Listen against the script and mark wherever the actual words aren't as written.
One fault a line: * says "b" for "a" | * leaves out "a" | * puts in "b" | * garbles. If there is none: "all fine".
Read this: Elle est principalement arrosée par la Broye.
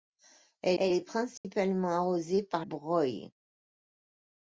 * puts in "elle"
* leaves out "la"